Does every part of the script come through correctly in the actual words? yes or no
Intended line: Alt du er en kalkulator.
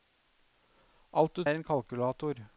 yes